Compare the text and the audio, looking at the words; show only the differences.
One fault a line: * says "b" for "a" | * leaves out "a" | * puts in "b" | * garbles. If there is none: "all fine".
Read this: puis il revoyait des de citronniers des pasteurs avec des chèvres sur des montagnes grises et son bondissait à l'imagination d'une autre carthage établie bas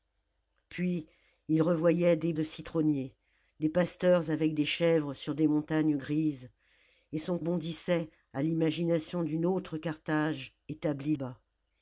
all fine